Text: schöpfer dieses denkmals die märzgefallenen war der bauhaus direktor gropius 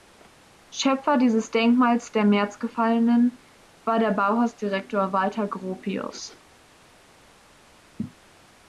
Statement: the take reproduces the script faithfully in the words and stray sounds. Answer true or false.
false